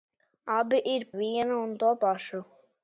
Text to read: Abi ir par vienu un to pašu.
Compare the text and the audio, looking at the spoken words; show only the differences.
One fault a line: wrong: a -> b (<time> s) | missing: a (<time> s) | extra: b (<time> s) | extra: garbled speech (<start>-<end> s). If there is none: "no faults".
missing: par (1.1 s)